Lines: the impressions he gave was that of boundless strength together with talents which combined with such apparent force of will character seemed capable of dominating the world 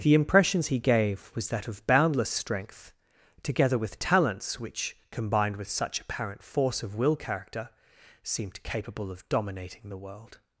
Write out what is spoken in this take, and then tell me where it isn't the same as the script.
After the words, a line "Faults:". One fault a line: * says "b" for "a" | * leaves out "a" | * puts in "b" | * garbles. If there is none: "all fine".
the impressions he gave was that of boundless strength together with talents which combined with such apparent force of will character seemed capable of dominating the world
Faults:
all fine